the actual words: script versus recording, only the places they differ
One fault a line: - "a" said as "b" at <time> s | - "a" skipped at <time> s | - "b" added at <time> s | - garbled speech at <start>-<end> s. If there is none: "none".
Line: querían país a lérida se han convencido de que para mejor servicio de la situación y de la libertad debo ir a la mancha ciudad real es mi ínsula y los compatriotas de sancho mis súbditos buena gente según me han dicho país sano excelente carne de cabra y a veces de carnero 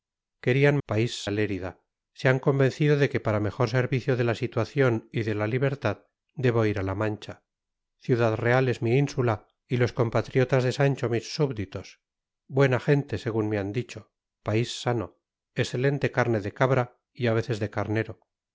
none